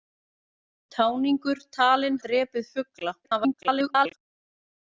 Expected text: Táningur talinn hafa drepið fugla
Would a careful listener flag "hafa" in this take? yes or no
yes